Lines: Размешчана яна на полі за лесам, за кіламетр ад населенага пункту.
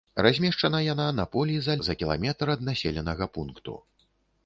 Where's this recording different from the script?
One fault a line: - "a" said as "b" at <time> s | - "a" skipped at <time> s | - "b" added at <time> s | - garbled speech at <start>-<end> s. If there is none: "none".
- "лесам" skipped at 1.8 s